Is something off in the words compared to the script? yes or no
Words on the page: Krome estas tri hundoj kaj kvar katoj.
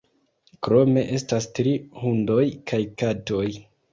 yes